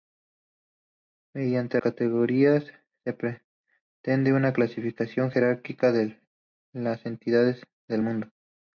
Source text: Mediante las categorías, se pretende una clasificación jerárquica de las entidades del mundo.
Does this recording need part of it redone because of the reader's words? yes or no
yes